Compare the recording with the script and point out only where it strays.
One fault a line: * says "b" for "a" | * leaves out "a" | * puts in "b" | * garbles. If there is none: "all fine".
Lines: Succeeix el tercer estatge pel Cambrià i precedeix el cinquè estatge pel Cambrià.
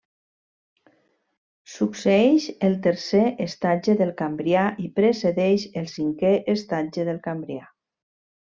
* says "del" for "pel"
* says "del" for "pel"